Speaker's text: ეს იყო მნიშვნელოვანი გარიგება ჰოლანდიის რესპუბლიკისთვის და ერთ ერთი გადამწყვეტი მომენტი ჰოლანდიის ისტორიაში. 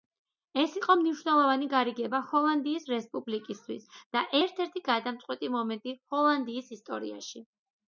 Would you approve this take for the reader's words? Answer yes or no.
yes